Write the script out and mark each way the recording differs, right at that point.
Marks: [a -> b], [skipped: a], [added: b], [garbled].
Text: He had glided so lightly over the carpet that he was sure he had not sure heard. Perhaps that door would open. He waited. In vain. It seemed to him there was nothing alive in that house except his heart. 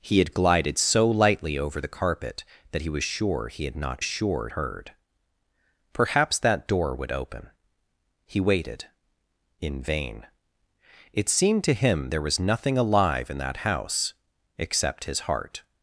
He had glided so lightly over the carpet that he was sure he had not sure heard. Perhaps that door would open. He waited. In vain. It seemed to him there was nothing alive in that house except his heart.